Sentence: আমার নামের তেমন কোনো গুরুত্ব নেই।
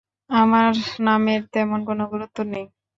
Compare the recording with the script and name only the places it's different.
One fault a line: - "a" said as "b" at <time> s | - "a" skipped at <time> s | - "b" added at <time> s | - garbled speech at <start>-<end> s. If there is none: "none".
none